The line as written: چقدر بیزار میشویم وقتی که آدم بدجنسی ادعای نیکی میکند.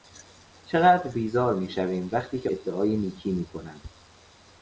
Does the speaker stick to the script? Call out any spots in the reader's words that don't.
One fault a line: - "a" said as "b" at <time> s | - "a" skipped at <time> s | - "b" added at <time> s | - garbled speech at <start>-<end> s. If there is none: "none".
- "آدم بدجنسی" skipped at 2.5 s